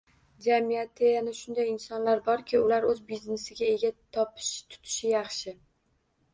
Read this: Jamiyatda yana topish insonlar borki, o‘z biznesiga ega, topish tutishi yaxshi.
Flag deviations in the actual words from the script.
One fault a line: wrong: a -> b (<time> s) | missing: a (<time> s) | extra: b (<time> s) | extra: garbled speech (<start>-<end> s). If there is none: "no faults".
wrong: topish -> shunday (1.4 s)
extra: ular (2.7 s)